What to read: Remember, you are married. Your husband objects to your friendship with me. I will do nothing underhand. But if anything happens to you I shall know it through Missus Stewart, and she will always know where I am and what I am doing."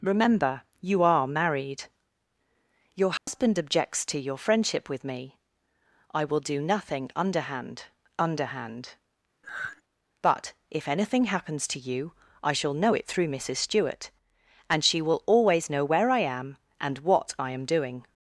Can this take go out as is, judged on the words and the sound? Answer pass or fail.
fail